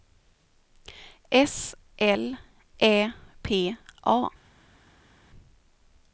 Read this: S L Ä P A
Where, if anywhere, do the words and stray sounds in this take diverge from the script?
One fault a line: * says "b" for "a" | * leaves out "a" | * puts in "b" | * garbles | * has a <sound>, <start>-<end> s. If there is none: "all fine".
all fine